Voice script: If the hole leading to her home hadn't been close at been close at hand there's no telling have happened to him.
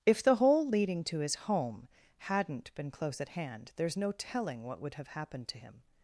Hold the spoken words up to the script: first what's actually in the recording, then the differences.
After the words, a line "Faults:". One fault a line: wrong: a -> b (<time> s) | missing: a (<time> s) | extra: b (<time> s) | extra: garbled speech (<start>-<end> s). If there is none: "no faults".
If the hole leading to his home hadn't been close at hand there's no telling what would have happened to him.
Faults:
wrong: her -> his (1.2 s)
missing: been close at (3.3 s)
extra: what would (4.6 s)